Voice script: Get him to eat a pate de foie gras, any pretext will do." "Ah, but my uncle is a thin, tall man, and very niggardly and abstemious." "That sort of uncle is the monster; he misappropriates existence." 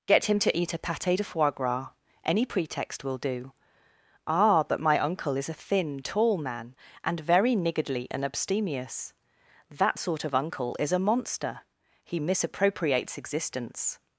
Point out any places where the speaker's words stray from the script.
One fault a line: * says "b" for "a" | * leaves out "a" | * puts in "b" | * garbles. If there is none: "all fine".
* says "a" for "the"